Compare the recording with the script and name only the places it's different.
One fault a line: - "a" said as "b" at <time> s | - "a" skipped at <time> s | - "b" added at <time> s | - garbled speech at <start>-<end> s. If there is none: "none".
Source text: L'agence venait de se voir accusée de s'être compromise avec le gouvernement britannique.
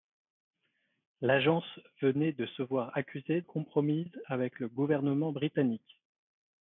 - "de s'être" skipped at 3.4 s